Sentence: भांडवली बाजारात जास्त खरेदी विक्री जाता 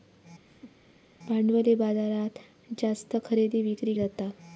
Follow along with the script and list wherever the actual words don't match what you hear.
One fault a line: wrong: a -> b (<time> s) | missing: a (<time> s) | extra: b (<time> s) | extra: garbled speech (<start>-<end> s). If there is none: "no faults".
no faults